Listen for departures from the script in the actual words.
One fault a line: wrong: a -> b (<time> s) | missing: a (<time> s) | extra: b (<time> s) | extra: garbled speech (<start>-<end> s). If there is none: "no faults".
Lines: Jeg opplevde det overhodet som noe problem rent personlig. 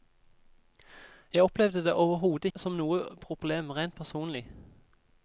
no faults